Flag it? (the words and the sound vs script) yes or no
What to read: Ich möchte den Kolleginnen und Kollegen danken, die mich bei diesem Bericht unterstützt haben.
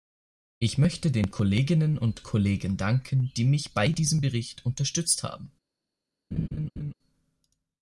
yes